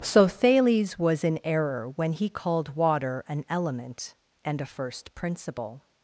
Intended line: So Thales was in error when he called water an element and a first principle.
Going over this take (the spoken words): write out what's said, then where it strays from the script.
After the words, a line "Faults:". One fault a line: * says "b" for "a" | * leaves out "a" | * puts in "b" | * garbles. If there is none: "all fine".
So Thales was in error when he called water an element and a first principle.
Faults:
all fine